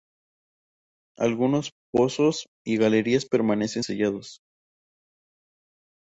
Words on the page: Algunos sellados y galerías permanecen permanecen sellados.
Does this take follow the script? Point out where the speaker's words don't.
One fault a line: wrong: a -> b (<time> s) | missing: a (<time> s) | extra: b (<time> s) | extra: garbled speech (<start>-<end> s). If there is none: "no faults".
wrong: sellados -> pozos (1.9 s)
missing: permanecen (3.8 s)